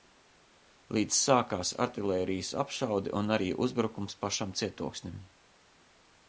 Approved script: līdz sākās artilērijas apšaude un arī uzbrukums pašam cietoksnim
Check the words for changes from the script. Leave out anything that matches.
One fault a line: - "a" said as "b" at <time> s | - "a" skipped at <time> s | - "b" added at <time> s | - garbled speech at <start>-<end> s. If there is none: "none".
none